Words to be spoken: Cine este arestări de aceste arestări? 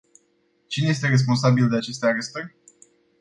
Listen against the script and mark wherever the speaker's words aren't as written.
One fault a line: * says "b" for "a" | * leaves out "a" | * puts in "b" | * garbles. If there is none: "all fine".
* says "responsabil" for "arestări"